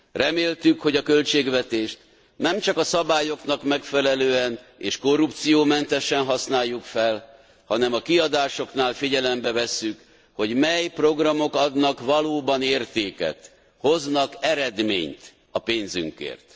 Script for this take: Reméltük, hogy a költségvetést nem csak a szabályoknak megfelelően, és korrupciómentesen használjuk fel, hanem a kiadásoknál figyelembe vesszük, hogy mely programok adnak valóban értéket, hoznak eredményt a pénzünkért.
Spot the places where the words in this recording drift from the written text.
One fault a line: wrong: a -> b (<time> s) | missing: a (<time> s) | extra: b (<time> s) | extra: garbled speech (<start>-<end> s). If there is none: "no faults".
no faults